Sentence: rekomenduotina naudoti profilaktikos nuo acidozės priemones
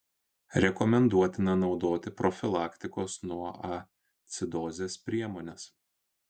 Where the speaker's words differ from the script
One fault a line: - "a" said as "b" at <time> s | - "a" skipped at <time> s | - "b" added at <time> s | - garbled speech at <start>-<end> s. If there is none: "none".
none